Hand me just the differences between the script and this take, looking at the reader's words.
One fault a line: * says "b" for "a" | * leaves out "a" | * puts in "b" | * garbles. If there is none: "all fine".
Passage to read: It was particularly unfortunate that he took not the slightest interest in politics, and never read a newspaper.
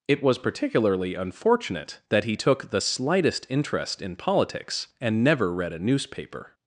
* leaves out "not"